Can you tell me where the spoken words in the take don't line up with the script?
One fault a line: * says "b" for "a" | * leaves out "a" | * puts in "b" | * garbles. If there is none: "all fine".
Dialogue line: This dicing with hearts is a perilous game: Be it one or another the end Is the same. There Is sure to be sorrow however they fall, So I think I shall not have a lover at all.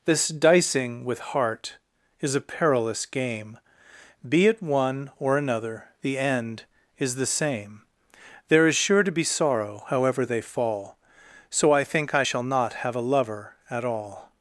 * says "heart" for "hearts"